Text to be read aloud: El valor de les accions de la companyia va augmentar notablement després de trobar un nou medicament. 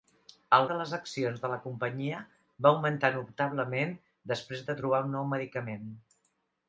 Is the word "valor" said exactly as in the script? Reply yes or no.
no